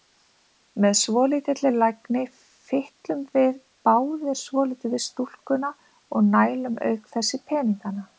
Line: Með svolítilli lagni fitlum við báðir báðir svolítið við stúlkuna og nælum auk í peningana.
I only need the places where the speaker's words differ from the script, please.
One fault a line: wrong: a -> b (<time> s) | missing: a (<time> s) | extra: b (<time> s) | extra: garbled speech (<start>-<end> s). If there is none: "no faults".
missing: báðir (4.4 s)
extra: þess (7.2 s)